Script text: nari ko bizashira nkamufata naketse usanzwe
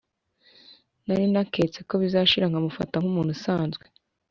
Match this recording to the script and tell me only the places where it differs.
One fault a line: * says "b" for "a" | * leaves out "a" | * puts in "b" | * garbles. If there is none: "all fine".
* puts in "naketse"
* says "nkumuntu" for "naketse"